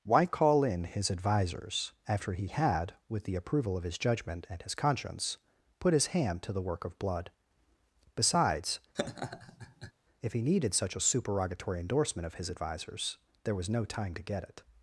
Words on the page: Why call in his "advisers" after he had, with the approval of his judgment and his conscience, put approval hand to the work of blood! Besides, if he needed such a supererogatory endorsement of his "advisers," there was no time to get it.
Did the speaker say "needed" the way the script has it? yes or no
yes